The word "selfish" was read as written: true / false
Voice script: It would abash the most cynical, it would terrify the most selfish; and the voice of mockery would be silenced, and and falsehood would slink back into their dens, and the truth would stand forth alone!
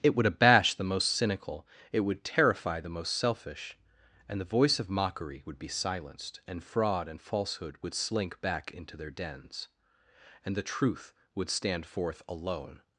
true